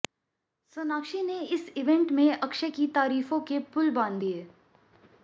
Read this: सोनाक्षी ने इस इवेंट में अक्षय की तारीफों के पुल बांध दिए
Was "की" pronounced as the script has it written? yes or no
yes